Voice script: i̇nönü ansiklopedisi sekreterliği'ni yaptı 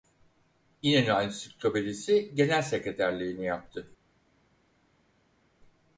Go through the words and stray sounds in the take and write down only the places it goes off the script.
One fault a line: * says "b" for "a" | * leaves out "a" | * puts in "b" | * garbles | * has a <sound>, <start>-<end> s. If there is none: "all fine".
* puts in "genel"